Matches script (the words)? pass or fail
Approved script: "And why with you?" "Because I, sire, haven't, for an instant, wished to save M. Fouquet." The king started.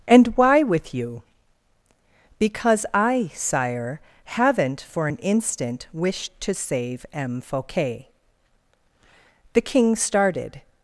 pass